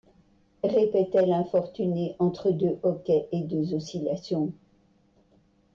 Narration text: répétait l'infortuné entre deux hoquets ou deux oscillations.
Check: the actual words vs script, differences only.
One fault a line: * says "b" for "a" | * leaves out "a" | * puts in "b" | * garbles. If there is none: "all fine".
* says "et" for "ou"